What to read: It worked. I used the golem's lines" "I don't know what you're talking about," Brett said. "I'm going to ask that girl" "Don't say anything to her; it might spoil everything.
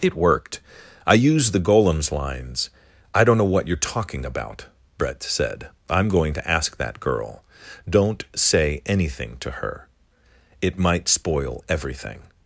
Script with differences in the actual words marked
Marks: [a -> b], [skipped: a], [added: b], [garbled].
It worked. I used the golem's lines" "I don't know what you're talking about," Brett said. "I'm going to ask that girl" "Don't say anything to her; it might spoil everything.